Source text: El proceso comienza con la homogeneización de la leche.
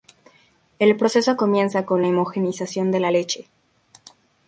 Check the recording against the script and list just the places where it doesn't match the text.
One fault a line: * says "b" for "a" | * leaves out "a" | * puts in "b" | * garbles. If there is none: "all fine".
all fine